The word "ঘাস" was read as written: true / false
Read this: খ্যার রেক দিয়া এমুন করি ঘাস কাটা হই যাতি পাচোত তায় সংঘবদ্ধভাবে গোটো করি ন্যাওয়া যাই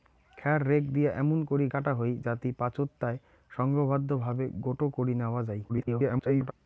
false